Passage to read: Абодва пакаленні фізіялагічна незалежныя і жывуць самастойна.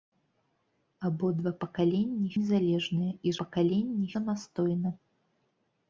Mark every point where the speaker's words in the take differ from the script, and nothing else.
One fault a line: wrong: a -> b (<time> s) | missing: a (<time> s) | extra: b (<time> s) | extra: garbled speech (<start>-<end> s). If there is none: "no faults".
missing: фізіялагічна (2.3 s)
wrong: жывуць -> пакаленні (3.4 s)